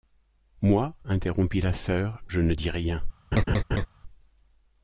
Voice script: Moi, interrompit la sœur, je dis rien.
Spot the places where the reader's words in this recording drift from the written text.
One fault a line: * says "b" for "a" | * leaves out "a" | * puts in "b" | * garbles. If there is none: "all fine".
* puts in "ne"